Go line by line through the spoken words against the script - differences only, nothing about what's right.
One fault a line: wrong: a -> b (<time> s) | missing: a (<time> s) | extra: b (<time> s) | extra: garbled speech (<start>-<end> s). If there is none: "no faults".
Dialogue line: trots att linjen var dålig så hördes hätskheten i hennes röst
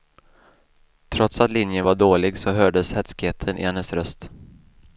no faults